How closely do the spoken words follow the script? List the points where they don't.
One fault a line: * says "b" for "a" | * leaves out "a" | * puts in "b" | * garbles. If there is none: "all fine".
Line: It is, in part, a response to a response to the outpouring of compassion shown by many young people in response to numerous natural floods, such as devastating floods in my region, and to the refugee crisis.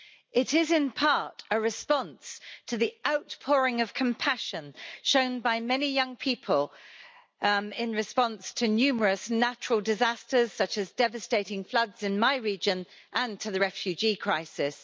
* leaves out "a response to"
* says "disasters" for "floods"